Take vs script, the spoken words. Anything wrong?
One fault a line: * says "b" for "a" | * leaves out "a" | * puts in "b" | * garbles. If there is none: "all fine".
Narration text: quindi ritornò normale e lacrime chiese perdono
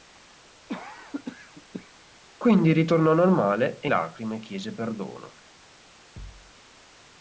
all fine